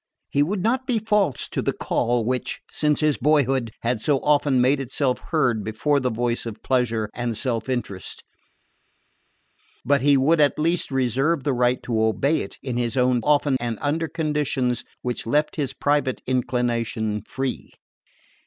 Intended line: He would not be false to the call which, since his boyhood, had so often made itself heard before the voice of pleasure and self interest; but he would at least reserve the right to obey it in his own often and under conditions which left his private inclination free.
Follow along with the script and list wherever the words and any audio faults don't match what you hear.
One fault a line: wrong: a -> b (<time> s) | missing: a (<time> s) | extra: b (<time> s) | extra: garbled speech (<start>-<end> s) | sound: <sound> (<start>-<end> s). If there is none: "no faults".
no faults